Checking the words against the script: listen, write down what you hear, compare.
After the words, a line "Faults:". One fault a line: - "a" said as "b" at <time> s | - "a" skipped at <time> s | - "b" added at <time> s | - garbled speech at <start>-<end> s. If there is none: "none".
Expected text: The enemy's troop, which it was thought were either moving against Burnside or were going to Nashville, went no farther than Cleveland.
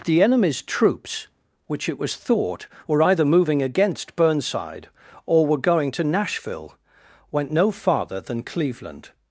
The enemy's troops, which it was thought were either moving against Burnside or were going to Nashville, went no farther than Cleveland.
Faults:
- "troop" said as "troops" at 0.6 s